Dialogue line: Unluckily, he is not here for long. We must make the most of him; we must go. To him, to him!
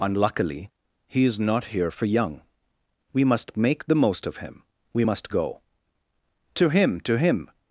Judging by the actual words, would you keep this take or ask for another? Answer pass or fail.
fail